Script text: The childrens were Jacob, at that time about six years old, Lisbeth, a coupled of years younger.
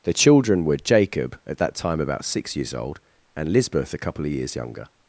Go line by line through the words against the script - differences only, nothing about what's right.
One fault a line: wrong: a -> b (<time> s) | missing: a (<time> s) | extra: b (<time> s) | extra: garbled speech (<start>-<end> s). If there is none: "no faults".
wrong: childrens -> children (0.1 s)
extra: and (3.4 s)
wrong: coupled -> couple (4.0 s)